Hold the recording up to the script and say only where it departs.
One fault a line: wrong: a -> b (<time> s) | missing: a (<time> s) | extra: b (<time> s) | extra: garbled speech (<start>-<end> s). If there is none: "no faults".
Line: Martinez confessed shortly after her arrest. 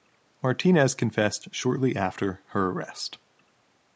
no faults